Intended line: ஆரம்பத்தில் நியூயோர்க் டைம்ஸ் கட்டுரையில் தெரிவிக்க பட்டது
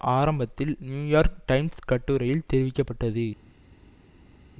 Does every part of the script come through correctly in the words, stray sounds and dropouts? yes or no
yes